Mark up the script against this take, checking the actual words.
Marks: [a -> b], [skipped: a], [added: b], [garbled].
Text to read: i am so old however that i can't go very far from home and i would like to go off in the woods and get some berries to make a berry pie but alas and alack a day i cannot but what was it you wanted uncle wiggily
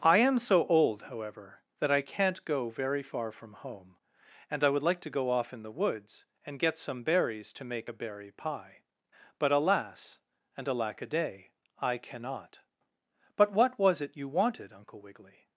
i am so old however that i can't go very far from home and i would like to go off in the woods and get some berries to make a berry pie but alas and alack a day i cannot but what was it you wanted uncle wiggily